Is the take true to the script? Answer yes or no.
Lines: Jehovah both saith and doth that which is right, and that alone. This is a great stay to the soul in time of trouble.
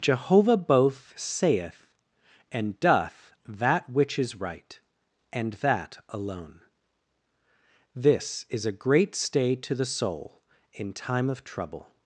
yes